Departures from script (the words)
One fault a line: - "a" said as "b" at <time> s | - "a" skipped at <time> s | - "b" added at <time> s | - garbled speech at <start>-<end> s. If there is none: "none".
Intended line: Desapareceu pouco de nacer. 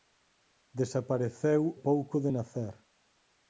none